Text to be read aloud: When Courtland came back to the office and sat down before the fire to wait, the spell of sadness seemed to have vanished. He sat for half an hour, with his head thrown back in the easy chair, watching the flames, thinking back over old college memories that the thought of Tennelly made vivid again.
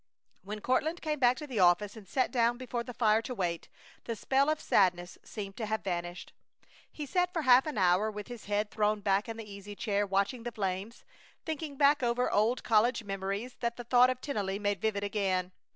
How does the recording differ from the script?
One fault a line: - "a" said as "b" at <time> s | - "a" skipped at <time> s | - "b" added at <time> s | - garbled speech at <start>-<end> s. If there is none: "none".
none